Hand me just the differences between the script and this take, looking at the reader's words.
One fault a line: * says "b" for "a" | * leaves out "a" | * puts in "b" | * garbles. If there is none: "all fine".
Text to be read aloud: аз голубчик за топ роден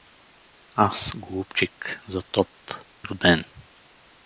all fine